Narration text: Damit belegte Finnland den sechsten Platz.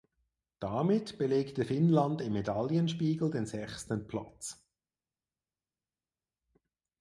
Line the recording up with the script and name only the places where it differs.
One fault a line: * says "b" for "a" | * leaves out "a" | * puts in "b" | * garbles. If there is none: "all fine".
* puts in "im Medaillenspiegel"